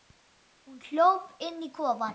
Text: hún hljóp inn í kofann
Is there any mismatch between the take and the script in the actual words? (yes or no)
no